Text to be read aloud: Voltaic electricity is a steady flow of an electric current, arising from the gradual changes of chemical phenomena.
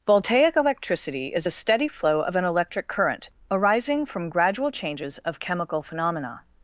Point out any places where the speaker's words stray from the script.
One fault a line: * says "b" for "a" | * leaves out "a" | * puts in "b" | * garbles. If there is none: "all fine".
* leaves out "the"